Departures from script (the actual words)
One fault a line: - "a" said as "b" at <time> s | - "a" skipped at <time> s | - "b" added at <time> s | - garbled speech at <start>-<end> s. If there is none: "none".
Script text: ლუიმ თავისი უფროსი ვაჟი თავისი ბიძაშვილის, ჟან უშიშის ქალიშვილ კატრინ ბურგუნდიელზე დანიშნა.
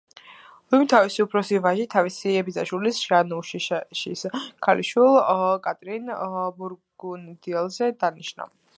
none